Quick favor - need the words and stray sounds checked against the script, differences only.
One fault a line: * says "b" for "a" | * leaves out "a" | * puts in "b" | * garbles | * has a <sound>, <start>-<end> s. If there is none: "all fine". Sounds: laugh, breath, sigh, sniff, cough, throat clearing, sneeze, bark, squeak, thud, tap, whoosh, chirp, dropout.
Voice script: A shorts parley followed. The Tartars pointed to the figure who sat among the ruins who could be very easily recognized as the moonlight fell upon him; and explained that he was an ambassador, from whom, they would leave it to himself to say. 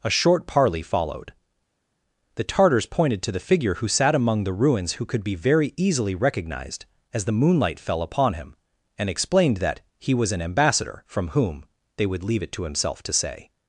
* says "short" for "shorts"